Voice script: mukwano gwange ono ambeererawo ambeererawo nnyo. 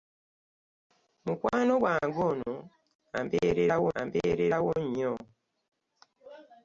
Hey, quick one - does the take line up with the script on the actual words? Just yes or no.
yes